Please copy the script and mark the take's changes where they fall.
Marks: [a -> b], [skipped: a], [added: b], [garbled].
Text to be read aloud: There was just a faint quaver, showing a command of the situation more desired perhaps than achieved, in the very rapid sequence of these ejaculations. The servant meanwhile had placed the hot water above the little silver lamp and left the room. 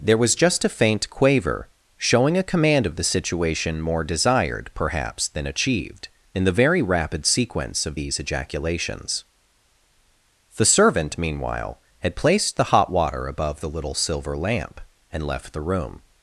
There was just a faint quaver, showing a command of the situation more desired perhaps than achieved, in the very rapid sequence of these ejaculations. The servant meanwhile had placed the hot water above the little silver lamp and left the room.